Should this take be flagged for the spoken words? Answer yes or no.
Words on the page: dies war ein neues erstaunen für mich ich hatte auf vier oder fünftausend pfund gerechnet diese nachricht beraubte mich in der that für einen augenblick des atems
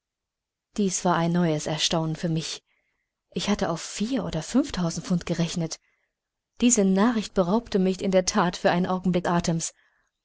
yes